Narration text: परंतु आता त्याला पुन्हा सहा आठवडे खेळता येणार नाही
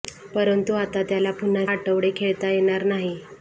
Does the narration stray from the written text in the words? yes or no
yes